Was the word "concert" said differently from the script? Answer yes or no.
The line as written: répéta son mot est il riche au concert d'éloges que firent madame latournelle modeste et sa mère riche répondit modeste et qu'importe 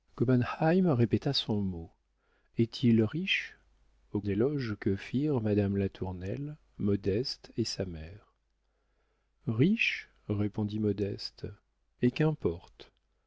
yes